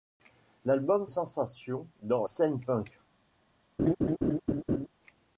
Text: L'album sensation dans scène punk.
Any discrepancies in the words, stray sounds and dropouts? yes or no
yes